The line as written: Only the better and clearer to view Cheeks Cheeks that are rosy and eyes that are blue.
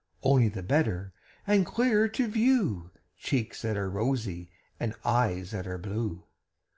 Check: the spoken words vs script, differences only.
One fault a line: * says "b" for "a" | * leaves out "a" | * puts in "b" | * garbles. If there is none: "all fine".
* leaves out "Cheeks"